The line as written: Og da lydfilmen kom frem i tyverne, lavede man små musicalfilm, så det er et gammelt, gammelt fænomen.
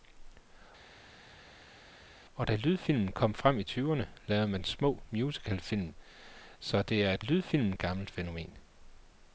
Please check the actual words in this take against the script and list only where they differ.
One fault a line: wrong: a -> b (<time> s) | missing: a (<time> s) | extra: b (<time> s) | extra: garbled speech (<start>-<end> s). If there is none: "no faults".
wrong: gammelt -> lydfilmen (7.2 s)